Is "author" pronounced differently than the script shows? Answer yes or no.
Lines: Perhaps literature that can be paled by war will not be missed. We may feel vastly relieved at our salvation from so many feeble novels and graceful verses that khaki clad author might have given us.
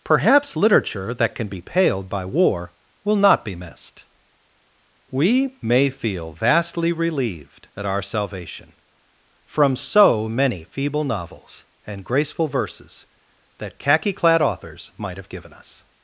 yes